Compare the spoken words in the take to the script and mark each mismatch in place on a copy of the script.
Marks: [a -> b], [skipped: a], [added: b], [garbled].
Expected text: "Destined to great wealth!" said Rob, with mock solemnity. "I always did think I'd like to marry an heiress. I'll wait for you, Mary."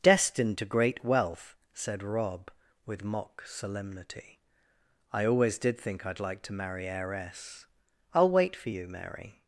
"Destined to great wealth!" said Rob, with mock solemnity. "I always did think I'd like to marry [skipped: an] heiress. I'll wait for you, Mary."